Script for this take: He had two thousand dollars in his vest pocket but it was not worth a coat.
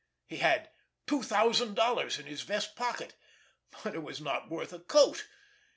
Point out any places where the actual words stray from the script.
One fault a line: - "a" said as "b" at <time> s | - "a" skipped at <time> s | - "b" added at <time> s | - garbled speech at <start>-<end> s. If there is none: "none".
none